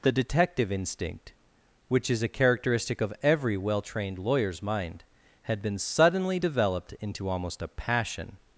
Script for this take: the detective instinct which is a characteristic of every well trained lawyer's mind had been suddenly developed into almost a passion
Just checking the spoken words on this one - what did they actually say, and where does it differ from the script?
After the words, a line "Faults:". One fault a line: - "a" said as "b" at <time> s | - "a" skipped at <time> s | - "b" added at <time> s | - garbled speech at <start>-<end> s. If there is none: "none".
the detective instinct which is a characteristic of every well trained lawyer's mind had been suddenly developed into almost a passion
Faults:
none